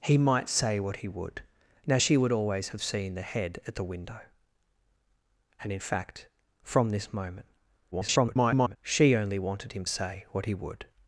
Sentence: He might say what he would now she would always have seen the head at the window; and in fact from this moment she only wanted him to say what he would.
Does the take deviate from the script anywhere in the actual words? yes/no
yes